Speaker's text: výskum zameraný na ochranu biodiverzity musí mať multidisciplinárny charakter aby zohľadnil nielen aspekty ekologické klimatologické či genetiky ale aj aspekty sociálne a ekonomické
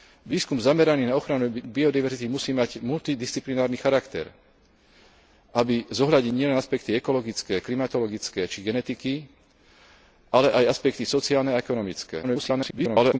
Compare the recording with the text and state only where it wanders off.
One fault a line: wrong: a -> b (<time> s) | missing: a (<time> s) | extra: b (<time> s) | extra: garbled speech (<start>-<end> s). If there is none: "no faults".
extra: garbled speech (12.2-13.2 s)